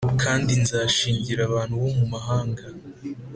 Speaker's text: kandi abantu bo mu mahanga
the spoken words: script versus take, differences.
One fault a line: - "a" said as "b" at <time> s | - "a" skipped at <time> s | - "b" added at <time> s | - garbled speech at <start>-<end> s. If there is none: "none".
- "nzashingira" added at 0.6 s